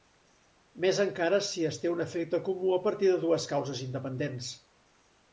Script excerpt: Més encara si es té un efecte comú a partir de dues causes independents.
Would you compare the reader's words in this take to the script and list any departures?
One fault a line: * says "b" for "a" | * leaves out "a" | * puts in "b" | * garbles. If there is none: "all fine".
all fine